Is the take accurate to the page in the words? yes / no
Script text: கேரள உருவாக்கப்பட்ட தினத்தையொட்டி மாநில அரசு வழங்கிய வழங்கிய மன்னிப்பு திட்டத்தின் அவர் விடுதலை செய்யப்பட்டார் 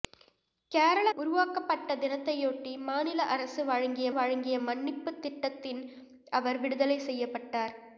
yes